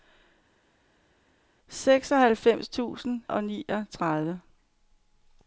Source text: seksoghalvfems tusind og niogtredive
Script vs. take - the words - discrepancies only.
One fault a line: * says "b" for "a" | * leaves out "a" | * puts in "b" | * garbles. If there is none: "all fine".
all fine